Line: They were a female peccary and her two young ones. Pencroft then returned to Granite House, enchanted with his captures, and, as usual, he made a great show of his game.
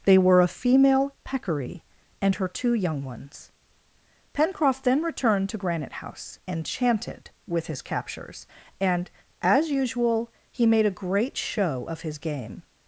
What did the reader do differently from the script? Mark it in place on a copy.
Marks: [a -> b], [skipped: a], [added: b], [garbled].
They were a female peccary and her two young ones. Pencroft then returned to Granite House, enchanted with his captures, and, as usual, he made a great show of his game.